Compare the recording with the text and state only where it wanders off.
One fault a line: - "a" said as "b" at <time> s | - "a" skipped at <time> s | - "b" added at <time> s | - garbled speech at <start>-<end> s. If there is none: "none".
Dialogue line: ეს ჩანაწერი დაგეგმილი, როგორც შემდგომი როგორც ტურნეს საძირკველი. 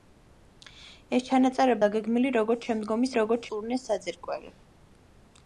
none